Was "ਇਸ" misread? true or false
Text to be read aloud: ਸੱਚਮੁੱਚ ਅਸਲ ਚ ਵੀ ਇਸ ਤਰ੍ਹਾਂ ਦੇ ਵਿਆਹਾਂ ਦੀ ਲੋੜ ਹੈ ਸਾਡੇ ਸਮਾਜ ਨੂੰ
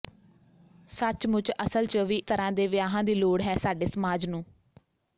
true